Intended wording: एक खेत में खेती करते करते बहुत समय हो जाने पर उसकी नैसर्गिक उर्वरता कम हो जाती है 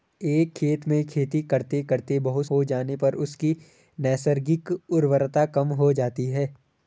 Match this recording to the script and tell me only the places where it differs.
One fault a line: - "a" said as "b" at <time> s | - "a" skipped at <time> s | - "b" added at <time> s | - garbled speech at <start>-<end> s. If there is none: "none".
- "समय" skipped at 2.5 s